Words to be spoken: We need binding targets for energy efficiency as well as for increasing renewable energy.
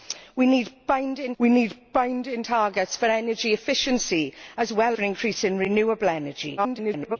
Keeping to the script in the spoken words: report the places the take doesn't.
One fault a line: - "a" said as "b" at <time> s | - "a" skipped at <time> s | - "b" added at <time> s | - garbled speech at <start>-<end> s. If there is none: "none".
- "we need binding" added at 1.4 s
- "as" skipped at 5.0 s
- garbled speech at 6.6-7.2 s